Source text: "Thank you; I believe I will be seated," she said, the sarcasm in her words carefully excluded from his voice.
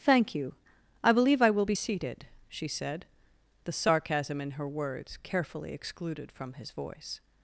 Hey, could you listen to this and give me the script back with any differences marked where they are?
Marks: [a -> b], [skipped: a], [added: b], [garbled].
"Thank you; I believe I will be seated," she said, the sarcasm in her words carefully excluded from his voice.